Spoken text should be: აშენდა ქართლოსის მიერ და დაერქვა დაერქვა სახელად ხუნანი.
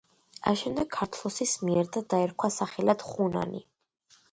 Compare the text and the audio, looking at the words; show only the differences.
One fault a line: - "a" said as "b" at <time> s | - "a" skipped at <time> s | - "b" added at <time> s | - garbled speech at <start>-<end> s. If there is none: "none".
- "დაერქვა" skipped at 2.5 s